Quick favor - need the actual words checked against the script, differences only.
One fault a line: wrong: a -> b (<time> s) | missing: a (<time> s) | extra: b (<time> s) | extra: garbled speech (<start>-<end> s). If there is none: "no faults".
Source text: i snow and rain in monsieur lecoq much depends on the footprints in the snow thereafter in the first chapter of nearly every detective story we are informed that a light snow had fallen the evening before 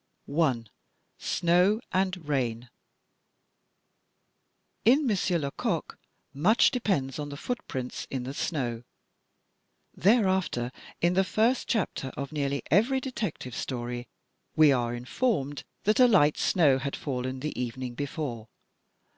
no faults